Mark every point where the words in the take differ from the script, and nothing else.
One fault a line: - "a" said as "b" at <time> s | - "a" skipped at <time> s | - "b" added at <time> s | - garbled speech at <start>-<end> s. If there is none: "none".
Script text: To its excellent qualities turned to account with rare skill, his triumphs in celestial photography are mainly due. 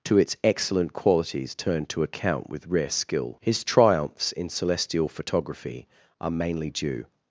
none